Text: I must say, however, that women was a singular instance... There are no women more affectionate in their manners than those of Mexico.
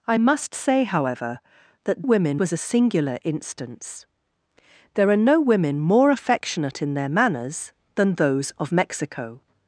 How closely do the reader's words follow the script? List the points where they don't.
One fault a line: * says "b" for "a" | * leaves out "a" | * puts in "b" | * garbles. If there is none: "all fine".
all fine